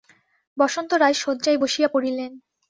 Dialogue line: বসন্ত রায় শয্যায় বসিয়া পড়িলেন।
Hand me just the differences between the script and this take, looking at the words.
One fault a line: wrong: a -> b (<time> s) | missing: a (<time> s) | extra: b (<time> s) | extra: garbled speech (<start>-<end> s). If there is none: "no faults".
no faults